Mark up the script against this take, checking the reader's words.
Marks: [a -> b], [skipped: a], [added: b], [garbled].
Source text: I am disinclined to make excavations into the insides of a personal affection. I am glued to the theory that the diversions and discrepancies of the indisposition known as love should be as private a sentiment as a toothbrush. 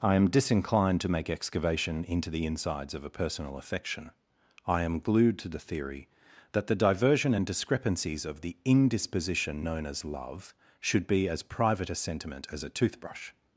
I am disinclined to make [excavations -> excavation] into the insides of a personal affection. I am glued to the theory that the [diversions -> diversion] and discrepancies of the indisposition known as love should be as private a sentiment as a toothbrush.